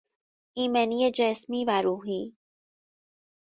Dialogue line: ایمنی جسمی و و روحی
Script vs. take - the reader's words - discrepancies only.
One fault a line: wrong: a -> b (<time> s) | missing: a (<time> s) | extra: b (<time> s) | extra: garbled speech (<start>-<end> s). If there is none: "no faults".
missing: و (1.8 s)